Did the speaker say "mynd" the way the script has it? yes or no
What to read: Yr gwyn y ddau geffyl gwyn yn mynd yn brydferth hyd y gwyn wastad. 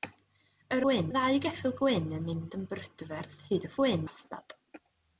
yes